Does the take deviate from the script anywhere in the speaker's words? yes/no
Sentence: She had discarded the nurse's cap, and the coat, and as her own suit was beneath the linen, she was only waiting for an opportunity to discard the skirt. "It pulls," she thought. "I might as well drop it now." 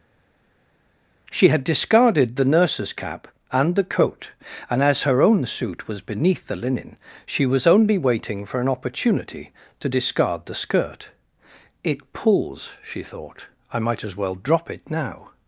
no